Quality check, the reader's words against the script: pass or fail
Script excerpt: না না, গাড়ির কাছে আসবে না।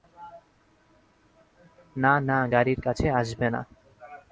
pass